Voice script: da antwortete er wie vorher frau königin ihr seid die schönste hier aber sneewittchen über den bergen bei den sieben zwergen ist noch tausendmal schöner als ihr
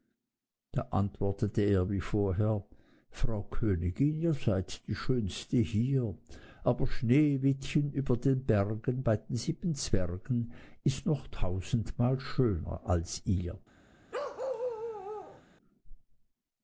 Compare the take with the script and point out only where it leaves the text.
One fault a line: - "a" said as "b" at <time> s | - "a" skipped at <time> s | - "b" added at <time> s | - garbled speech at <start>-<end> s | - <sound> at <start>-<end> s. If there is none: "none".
- bark at 14.1-15.4 s